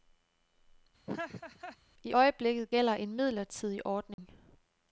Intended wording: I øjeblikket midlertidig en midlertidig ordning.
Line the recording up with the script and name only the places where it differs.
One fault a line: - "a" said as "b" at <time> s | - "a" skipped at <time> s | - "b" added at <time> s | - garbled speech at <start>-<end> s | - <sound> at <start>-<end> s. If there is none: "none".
- laugh at 1.1-1.8 s
- "midlertidig" said as "gælder" at 2.7 s
- dropout at 4.1-4.2 s